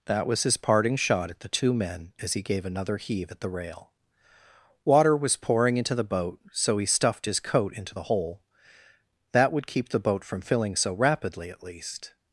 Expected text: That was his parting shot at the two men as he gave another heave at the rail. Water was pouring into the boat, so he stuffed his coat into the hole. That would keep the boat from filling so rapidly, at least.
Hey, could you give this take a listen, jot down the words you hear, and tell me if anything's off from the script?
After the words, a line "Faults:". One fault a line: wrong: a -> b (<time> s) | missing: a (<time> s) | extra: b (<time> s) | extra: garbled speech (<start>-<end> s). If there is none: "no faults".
That was his parting shot at the two men as he gave another heave at the rail. Water was pouring into the boat, so he stuffed his coat into the hole. That would keep the boat from filling so rapidly, at least.
Faults:
no faults